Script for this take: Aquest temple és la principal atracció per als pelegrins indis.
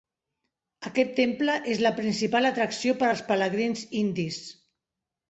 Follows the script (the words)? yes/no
yes